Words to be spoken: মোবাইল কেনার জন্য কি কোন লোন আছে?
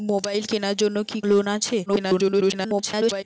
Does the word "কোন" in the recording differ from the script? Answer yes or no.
yes